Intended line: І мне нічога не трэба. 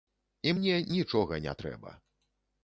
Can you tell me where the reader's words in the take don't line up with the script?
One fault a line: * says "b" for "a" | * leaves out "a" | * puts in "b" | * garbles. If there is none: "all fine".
all fine